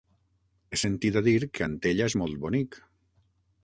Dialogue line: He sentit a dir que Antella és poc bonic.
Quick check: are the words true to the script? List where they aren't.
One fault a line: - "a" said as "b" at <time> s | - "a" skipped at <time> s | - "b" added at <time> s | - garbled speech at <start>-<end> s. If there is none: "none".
- "poc" said as "molt" at 2.2 s